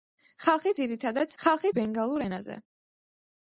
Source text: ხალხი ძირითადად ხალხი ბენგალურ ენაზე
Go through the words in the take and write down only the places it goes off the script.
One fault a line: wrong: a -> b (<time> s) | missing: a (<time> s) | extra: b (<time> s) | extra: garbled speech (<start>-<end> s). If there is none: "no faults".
no faults